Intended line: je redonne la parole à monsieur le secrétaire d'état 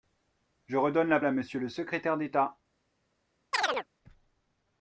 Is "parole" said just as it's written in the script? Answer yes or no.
no